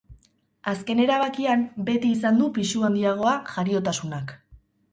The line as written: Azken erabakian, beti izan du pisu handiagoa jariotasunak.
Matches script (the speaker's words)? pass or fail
pass